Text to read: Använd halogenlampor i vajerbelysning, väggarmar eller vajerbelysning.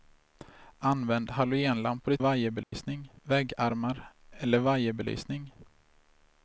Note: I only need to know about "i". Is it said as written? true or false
true